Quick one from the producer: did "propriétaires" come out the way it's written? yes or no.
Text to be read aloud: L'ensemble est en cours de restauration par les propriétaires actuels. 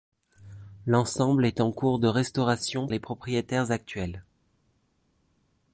yes